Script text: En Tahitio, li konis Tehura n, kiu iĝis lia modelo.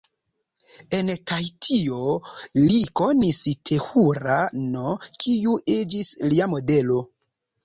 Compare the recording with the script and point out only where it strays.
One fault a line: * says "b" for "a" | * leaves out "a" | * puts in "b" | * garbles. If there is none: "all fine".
all fine